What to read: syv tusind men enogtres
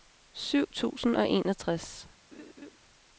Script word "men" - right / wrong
wrong